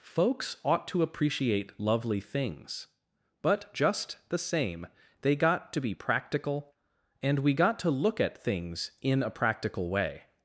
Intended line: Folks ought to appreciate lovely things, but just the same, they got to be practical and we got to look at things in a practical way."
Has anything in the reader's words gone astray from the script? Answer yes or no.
no